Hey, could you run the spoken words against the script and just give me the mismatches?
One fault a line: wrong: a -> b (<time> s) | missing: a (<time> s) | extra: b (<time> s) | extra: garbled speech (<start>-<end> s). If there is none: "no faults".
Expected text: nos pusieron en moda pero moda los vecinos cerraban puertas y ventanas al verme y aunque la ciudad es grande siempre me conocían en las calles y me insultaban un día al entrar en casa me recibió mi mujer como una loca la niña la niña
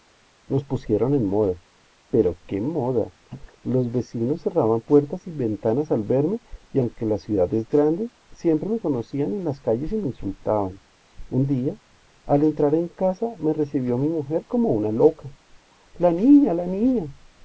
extra: qué (2.5 s)